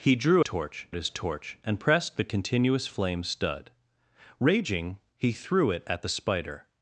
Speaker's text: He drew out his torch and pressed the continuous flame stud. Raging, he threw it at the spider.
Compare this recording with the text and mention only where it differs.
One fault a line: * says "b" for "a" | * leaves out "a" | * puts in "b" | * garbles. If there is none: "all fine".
* says "torch" for "out"